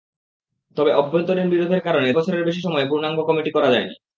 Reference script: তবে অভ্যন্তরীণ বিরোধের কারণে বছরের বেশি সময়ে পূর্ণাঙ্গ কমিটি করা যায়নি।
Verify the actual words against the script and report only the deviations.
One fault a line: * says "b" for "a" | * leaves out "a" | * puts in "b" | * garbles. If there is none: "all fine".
all fine